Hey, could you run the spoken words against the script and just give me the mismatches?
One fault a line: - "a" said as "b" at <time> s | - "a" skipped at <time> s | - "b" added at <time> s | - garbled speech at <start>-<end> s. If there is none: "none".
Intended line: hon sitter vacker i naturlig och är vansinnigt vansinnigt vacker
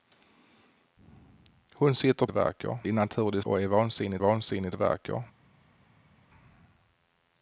none